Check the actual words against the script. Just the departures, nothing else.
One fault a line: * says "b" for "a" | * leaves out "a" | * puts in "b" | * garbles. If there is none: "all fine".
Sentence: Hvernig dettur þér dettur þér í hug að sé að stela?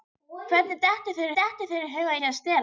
all fine